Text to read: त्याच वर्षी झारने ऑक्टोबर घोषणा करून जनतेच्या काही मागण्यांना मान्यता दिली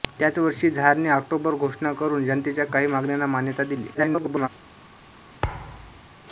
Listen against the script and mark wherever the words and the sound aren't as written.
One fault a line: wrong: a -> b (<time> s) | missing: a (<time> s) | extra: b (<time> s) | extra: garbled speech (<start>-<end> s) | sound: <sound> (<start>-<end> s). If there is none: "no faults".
extra: garbled speech (3.9-4.5 s)
sound: thud (5.4-6.1 s)